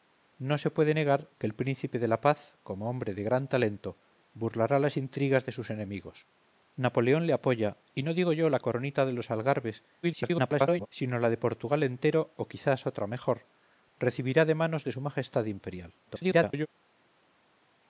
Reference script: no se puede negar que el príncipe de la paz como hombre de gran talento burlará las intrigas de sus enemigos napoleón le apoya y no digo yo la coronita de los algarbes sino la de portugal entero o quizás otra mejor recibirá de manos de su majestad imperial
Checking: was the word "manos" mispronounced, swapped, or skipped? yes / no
no